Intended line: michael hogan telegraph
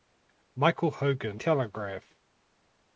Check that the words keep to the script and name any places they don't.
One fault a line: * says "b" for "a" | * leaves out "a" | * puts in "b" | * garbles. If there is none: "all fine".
all fine